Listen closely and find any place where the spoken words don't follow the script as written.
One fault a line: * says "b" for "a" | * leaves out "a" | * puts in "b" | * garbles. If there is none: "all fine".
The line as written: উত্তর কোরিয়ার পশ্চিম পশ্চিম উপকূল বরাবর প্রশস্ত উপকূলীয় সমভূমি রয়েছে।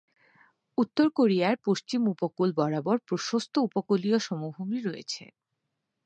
* leaves out "পশ্চিম"